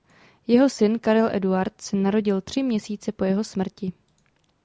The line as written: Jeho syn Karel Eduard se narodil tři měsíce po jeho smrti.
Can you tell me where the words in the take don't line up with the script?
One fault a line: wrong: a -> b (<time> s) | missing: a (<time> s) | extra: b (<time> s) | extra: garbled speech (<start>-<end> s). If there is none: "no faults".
no faults